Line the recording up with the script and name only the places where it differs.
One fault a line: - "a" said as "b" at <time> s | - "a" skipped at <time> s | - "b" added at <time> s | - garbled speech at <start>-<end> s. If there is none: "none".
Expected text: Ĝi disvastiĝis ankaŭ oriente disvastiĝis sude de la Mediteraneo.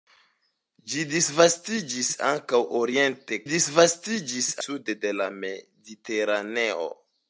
none